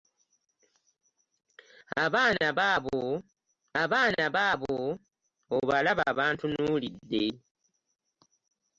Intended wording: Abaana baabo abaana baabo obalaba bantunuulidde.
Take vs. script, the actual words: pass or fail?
pass